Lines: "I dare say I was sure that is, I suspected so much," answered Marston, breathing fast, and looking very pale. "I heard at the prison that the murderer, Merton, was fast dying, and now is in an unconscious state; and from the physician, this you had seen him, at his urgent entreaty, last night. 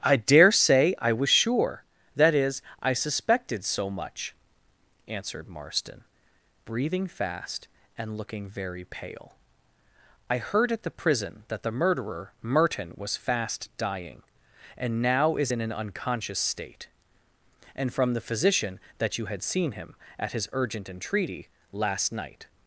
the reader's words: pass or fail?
fail